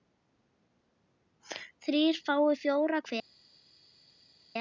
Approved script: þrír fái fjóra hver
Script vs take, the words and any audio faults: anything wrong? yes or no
no